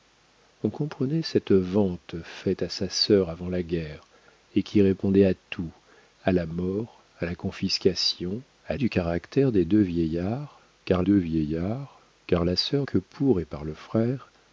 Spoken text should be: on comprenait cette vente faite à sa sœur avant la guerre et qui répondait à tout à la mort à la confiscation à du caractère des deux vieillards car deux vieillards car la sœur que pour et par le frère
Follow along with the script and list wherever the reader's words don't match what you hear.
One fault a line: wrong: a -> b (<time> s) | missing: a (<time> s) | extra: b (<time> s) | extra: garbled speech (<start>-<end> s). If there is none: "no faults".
no faults